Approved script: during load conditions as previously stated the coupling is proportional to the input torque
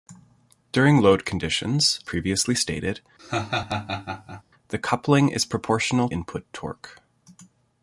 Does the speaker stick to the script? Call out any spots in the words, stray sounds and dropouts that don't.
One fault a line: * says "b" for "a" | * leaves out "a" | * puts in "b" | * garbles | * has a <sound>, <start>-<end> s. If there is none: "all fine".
* leaves out "as"
* has a laugh, 3.2-4.4 s
* leaves out "to the"